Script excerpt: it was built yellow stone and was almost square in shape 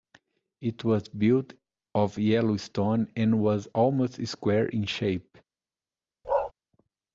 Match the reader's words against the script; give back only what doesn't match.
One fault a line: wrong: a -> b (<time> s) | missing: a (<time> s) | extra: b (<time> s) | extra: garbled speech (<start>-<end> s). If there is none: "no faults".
extra: of (1.9 s)